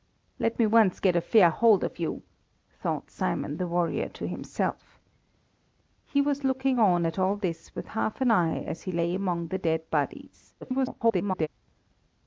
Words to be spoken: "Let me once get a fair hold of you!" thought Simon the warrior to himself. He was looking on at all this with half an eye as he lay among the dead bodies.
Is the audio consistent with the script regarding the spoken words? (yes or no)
no